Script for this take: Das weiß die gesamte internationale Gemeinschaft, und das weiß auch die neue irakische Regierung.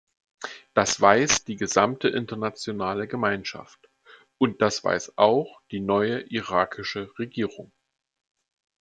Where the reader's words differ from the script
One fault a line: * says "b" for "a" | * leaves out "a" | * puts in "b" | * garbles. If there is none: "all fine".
all fine